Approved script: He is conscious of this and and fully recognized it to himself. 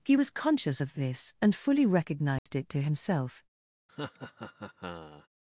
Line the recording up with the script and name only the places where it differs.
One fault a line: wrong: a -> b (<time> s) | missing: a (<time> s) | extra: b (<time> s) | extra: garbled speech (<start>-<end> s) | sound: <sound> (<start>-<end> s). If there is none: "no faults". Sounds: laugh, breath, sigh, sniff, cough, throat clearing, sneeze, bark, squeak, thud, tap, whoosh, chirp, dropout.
wrong: is -> was (0.1 s)
missing: and (1.5 s)
sound: dropout (2.4-2.5 s)
sound: laugh (3.9-5.3 s)